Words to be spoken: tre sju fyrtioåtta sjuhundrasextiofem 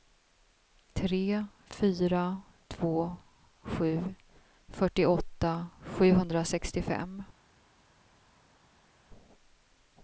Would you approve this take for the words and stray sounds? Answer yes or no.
no